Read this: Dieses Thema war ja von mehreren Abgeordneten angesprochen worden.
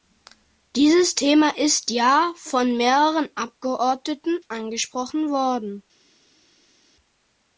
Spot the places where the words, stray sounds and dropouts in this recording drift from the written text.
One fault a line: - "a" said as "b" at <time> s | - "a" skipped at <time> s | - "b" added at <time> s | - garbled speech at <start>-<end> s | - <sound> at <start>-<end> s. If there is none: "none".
- "war" said as "ist" at 1.6 s